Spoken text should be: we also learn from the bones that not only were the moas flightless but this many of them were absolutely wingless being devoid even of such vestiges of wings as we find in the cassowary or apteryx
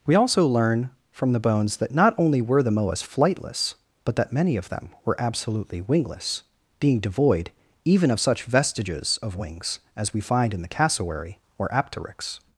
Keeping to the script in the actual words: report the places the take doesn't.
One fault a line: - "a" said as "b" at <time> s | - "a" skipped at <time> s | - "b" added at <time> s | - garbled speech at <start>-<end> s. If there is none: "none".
- "this" said as "that" at 4.2 s